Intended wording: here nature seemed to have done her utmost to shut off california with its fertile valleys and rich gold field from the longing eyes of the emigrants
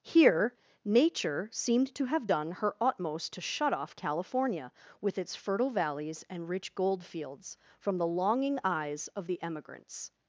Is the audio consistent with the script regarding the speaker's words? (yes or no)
no